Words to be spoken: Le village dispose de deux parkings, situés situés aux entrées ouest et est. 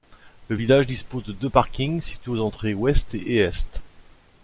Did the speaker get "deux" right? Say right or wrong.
right